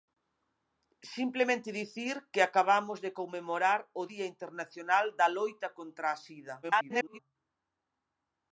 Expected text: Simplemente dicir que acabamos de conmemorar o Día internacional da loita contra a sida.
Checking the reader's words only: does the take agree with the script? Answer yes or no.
no